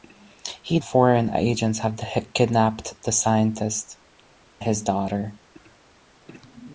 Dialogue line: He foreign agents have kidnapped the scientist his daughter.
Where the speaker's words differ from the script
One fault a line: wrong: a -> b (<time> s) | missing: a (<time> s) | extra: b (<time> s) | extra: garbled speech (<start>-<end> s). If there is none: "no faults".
no faults